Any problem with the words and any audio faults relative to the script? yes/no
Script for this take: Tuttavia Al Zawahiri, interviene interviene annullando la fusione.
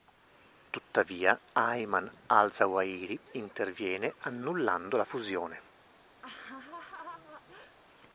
yes